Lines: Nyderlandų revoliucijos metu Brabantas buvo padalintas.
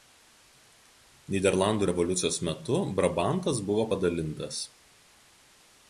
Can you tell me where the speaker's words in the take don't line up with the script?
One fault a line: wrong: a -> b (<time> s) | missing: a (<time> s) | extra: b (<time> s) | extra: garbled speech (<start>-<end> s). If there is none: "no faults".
no faults